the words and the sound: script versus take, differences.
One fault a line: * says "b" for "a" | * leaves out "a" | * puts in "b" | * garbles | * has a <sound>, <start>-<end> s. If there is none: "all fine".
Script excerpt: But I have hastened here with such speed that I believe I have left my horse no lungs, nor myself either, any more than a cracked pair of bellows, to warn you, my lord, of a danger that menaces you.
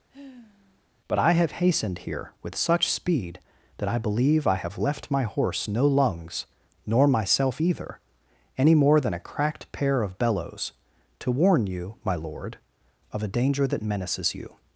* has a sigh, 0.1-0.8 s